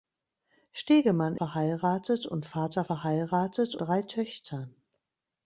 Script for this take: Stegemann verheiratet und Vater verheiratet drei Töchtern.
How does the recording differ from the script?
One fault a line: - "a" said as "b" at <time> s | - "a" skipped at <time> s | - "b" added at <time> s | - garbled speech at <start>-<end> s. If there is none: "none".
none